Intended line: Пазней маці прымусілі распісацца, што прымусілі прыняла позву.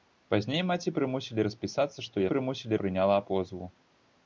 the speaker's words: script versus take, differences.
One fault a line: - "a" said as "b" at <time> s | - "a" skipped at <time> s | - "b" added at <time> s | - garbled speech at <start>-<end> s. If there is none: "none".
none